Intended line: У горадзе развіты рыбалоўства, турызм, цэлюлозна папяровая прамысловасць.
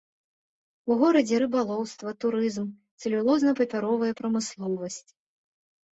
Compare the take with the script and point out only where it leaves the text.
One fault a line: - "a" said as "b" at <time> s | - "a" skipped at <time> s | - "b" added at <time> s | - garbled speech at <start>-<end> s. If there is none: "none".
- "развіты" skipped at 1.4 s